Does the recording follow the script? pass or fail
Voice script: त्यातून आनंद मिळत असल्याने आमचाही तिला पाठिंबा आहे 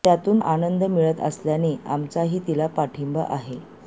pass